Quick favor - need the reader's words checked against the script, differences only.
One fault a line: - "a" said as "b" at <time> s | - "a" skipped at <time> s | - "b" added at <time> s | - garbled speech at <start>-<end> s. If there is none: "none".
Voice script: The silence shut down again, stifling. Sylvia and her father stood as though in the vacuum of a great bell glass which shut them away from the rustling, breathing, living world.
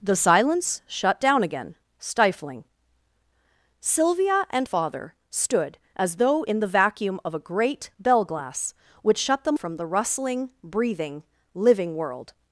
- "her" skipped at 4.7 s
- "away" skipped at 9.6 s